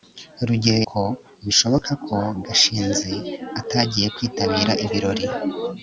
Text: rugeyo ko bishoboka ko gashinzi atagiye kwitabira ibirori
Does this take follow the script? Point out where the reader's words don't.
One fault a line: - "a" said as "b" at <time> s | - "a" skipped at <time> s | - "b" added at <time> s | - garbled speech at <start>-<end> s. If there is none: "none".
none